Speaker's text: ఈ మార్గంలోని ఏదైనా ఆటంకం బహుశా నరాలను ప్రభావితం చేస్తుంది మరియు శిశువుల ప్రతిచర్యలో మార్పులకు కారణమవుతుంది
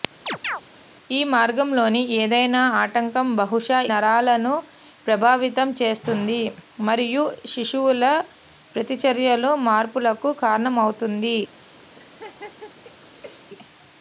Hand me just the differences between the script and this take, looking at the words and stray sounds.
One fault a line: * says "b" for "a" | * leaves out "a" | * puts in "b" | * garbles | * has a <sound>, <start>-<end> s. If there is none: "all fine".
* has a chirp, 0.3-0.6 s
* has a laugh, 11.9-13.5 s